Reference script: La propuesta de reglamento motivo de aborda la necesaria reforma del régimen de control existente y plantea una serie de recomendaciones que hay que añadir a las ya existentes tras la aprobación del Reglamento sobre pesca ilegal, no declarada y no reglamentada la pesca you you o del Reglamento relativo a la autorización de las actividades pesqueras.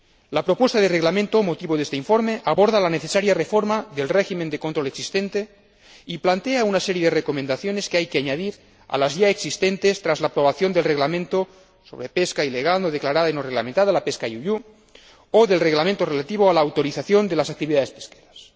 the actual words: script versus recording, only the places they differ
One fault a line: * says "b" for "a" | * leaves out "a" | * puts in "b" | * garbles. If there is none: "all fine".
* puts in "este informe"